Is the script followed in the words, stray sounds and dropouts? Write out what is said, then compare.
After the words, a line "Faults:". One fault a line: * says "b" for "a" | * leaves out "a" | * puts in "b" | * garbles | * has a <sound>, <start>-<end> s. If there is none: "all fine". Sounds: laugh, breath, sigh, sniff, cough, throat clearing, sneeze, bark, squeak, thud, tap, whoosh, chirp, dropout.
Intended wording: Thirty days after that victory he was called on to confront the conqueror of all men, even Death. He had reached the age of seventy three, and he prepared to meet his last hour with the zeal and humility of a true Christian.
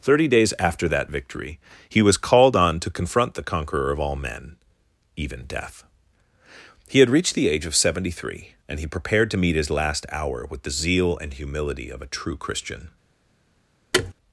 Thirty days after that victory he was called on to confront the conqueror of all men, even Death. He had reached the age of seventy three, and he prepared to meet his last hour with the zeal and humility of a true Christian.
Faults:
* has a thud, 13.9-14.1 s